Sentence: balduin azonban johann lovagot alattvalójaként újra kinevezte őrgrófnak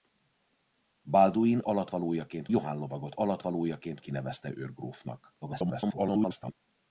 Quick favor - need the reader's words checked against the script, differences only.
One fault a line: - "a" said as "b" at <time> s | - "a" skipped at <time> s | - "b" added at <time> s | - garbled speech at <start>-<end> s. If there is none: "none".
- "azonban" said as "alattvalójaként" at 1.6 s
- "újra" skipped at 4.0 s
- garbled speech at 5.4-6.5 s